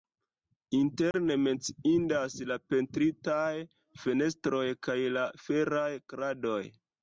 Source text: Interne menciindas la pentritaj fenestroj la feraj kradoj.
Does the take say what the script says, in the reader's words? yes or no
no